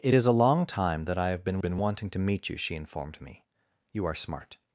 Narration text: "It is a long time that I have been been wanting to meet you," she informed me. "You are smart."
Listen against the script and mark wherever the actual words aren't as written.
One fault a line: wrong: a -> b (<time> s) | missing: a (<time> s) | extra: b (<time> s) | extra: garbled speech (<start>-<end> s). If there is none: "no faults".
no faults